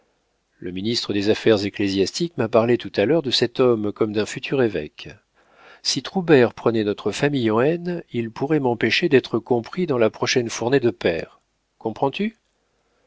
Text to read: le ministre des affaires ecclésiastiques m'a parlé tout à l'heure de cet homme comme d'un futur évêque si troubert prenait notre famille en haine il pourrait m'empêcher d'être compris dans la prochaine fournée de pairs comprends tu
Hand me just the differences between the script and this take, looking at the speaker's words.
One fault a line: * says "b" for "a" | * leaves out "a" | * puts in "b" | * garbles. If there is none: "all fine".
all fine